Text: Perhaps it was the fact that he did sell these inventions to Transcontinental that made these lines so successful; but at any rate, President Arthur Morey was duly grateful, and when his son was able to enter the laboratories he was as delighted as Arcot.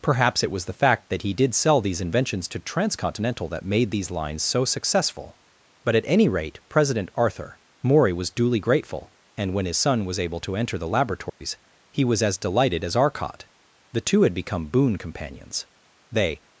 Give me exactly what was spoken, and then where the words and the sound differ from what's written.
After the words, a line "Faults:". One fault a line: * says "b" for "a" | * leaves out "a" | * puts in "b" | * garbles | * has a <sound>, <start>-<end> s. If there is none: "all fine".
Perhaps it was the fact that he did sell these inventions to Transcontinental that made these lines so successful; but at any rate, President Arthur Morey was duly grateful, and when his son was able to enter the laboratories he was as delighted as Arcot. The two had become boon companions. They
Faults:
* has a dropout, 11.3-11.4 s
* puts in "The two had become boon companions They"